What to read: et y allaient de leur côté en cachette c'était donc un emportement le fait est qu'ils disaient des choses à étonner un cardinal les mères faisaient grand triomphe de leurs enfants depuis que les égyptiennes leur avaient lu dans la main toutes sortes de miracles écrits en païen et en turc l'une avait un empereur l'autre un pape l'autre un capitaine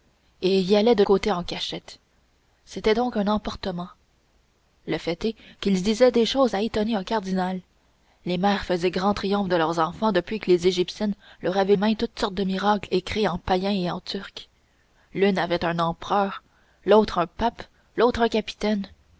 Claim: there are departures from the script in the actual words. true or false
true